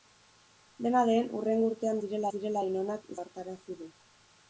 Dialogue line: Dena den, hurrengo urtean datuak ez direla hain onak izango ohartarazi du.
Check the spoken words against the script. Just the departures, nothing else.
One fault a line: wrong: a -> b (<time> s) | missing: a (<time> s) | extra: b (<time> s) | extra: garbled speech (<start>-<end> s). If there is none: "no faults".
wrong: datuak -> direla (2.1 s)
missing: izango (3.1 s)